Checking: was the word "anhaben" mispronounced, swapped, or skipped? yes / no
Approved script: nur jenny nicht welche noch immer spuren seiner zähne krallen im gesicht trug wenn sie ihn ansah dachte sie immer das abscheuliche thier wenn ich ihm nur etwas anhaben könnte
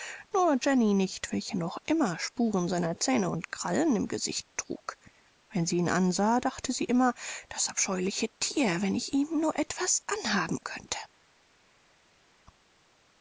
no